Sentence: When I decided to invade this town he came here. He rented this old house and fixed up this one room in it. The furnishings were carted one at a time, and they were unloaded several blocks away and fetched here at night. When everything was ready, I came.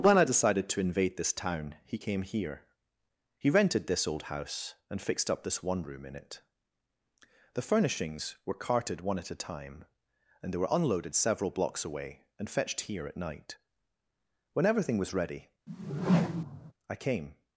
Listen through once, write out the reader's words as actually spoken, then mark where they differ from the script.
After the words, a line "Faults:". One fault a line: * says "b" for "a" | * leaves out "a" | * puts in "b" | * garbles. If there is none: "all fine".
When I decided to invade this town he came here. He rented this old house and fixed up this one room in it. The furnishings were carted one at a time, and they were unloaded several blocks away and fetched here at night. When everything was ready, I came.
Faults:
all fine